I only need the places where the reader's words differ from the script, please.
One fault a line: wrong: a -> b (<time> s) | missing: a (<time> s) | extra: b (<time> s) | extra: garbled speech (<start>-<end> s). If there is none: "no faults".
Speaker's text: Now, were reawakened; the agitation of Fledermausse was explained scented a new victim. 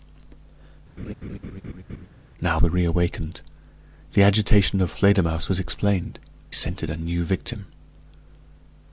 no faults